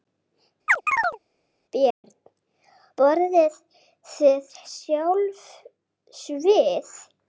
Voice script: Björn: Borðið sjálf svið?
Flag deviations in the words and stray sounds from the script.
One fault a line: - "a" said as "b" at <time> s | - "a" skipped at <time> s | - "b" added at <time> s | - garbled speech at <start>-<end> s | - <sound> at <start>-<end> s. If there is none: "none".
- chirp at 0.7-1.2 s
- dropout at 1.9-2.0 s
- "þið" added at 4.1 s